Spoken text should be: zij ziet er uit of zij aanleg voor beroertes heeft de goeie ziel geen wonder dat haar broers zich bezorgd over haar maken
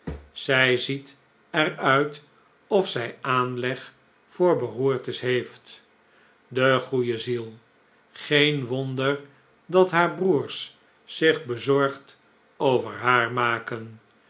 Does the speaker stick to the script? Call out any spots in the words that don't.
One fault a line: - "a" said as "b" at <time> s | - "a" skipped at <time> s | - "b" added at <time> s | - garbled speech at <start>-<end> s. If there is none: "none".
none